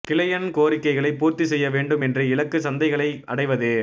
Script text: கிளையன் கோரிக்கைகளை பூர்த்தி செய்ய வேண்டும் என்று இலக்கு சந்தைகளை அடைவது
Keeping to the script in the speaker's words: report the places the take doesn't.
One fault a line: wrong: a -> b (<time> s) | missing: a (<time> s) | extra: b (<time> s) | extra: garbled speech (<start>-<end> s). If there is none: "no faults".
no faults